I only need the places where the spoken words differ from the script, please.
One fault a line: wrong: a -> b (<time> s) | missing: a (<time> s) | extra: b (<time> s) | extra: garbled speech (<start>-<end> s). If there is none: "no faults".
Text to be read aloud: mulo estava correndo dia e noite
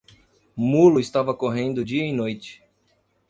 no faults